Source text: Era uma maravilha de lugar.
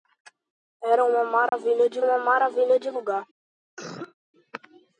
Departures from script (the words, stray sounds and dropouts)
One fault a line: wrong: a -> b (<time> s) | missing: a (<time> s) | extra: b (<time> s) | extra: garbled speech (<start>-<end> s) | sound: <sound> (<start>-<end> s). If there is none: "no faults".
sound: dropout (1.5-1.5 s)
extra: uma maravilha de (2.0 s)
sound: cough (3.8-4.1 s)